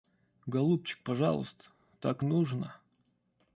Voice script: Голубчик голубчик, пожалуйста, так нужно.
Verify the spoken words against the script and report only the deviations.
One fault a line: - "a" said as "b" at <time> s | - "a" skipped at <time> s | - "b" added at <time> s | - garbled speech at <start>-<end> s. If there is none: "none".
- "голубчик" skipped at 1.0 s